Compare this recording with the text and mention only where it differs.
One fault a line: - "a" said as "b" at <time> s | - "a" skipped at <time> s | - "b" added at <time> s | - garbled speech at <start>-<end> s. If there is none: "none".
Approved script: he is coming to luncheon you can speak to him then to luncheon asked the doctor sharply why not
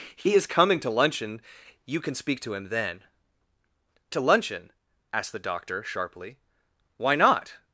none